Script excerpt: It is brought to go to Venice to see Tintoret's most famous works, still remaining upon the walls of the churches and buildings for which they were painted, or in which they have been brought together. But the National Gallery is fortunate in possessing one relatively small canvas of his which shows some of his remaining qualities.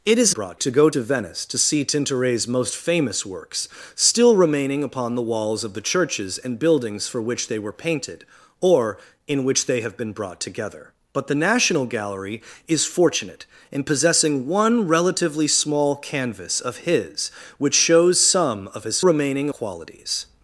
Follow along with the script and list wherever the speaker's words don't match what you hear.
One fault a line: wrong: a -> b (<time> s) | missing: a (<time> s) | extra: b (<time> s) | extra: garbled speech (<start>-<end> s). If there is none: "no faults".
no faults